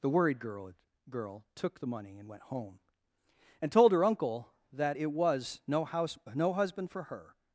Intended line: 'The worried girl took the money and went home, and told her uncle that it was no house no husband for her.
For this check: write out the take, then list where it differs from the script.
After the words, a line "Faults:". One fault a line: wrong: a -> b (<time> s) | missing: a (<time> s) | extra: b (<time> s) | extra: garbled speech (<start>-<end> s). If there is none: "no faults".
'The worried girl girl took the money and went home, and told her uncle that it was no house no husband for her.
Faults:
extra: girl (1.1 s)